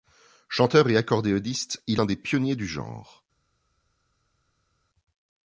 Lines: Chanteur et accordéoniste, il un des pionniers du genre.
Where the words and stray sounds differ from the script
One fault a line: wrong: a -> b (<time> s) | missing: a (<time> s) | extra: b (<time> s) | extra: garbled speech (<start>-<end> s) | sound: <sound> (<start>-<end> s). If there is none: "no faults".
no faults